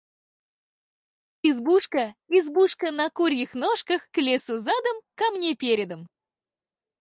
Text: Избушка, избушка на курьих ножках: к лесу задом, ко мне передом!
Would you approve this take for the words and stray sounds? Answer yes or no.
yes